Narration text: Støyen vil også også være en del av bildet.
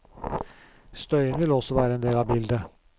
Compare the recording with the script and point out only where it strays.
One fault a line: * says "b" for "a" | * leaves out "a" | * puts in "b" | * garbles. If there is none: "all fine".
* leaves out "også"